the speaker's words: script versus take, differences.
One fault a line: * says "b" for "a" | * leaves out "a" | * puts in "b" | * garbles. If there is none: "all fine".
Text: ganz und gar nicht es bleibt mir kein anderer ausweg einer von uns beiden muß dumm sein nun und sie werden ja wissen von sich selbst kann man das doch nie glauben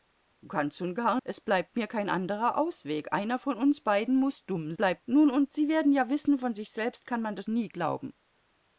* leaves out "nicht"
* says "bleibt" for "sein"
* leaves out "doch"